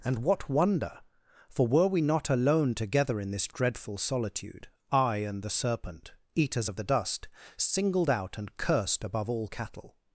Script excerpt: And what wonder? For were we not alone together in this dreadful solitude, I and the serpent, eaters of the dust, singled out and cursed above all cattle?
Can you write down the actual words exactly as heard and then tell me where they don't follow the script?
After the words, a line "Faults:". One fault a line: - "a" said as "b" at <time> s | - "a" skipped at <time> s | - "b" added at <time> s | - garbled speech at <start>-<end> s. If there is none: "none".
And what wonder? For were we not alone together in this dreadful solitude, I and the serpent, eaters of the dust, singled out and cursed above all cattle?
Faults:
none